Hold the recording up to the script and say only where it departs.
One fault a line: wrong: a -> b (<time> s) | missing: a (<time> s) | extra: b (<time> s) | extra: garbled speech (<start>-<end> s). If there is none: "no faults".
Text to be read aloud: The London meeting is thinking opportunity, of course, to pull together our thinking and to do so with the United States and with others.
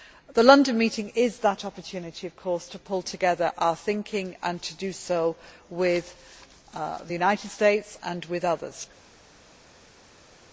wrong: thinking -> that (1.4 s)